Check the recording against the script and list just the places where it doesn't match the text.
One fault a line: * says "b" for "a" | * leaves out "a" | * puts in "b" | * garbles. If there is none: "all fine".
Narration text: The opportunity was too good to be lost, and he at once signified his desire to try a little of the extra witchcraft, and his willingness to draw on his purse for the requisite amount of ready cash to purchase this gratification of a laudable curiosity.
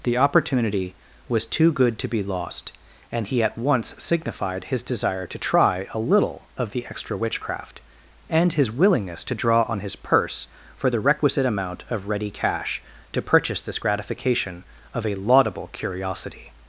all fine